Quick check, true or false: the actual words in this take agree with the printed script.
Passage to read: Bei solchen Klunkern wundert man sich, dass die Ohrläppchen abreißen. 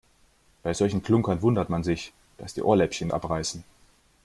true